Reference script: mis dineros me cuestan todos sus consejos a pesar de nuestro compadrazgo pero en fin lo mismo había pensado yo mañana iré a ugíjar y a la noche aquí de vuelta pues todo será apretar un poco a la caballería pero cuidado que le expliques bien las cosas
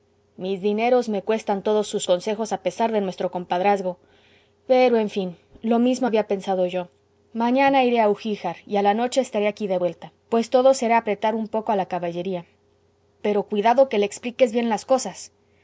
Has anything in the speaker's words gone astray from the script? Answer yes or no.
yes